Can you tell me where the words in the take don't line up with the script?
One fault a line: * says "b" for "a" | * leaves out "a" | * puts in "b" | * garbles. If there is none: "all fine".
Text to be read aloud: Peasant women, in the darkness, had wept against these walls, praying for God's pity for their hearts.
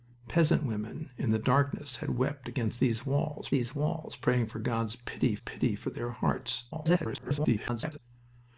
* puts in "these walls"
* puts in "pity"
* garbles